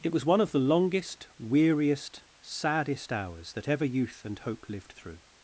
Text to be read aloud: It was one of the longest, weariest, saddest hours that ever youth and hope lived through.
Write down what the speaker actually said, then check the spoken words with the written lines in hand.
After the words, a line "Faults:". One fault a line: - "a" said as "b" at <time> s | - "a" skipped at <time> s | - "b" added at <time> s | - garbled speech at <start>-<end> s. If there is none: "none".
It was one of the longest, weariest, saddest hours that ever youth and hope lived through.
Faults:
none